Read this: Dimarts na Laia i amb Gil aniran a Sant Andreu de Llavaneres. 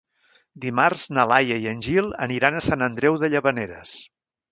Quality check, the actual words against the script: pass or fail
fail